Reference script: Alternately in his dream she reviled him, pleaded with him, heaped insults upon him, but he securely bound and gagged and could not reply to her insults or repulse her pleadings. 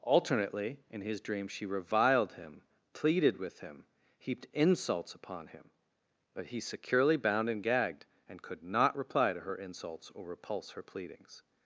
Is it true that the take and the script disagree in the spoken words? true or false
false